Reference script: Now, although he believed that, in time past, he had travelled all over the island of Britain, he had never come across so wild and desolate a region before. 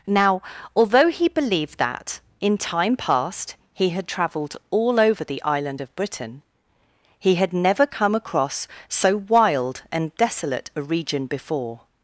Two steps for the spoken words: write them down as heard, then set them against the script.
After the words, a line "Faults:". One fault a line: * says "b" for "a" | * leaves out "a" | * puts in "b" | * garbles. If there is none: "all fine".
Now, although he believed that, in time past, he had travelled all over the island of Britain, he had never come across so wild and desolate a region before.
Faults:
all fine